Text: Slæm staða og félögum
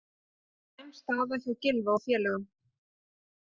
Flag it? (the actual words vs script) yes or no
yes